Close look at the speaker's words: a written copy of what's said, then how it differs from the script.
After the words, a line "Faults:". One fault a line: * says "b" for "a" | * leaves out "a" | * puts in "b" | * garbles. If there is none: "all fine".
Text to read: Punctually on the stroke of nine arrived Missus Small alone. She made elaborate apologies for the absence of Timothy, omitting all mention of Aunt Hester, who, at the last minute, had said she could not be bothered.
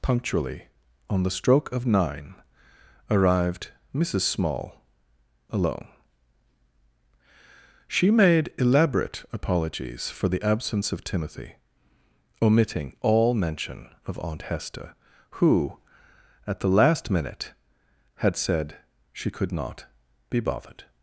Punctually on the stroke of nine arrived Missus Small alone. She made elaborate apologies for the absence of Timothy, omitting all mention of Aunt Hester, who, at the last minute, had said she could not be bothered.
Faults:
all fine